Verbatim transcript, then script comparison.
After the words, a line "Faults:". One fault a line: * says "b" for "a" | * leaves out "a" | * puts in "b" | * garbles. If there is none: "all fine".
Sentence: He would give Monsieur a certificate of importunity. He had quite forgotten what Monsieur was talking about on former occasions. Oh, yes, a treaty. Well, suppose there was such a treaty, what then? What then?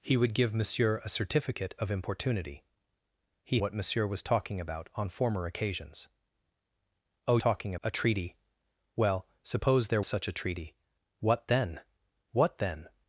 He would give Monsieur a certificate of importunity. He what Monsieur was talking about on former occasions. Oh, talking, a treaty. Well, suppose there such a treaty, what then? What then?
Faults:
* leaves out "had quite forgotten"
* says "talking" for "yes"
* leaves out "was"